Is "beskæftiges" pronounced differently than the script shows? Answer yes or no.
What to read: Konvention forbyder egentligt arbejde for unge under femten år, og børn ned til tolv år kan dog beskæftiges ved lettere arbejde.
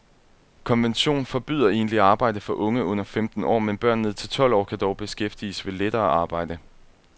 no